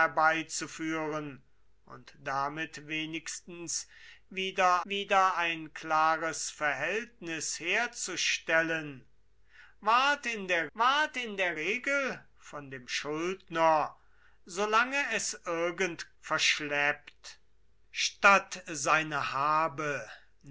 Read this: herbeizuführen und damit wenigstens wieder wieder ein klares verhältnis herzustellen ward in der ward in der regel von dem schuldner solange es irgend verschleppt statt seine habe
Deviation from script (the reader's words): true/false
false